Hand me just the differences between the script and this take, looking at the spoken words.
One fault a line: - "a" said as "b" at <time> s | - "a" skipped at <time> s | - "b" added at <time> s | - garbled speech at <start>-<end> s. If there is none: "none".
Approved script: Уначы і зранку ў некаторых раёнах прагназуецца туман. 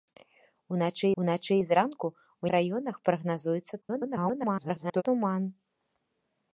- "уначы" added at 1.2 s
- "некаторых" skipped at 2.4 s
- garbled speech at 3.8-5.0 s